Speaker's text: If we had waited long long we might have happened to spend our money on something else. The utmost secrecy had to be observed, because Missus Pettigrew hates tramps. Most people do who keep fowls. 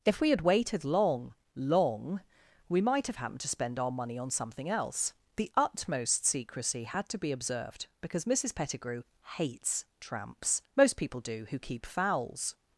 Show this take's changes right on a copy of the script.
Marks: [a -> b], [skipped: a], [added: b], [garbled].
If we had waited long long we might have happened to spend our money on something else. The utmost secrecy had to be observed, because Missus Pettigrew hates tramps. Most people do who keep fowls.